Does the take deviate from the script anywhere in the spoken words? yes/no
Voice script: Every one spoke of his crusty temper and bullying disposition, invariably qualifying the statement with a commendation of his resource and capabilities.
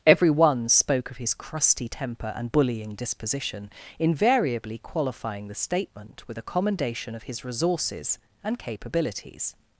yes